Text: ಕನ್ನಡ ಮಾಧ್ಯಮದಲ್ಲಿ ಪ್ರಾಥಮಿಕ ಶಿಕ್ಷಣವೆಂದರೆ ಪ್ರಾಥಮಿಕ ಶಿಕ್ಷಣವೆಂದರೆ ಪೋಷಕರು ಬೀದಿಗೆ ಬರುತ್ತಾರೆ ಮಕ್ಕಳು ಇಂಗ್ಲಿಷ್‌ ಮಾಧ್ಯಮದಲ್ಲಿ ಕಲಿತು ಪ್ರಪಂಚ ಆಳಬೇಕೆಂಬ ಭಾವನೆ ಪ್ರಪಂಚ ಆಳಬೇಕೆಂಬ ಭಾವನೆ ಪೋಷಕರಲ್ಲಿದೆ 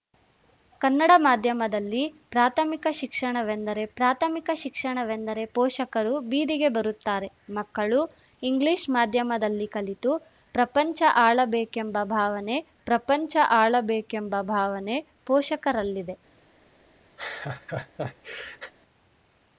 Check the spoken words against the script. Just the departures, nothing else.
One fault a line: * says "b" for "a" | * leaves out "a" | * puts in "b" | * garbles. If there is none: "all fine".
all fine